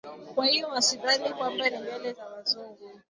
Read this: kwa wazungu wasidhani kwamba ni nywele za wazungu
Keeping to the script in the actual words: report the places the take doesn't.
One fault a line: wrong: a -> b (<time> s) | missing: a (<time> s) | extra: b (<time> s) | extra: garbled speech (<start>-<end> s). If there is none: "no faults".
wrong: wazungu -> hiyo (0.5 s)